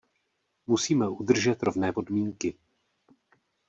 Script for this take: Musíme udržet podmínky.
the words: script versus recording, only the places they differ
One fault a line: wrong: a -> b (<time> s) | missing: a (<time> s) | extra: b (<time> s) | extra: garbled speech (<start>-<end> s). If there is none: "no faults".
extra: rovné (1.6 s)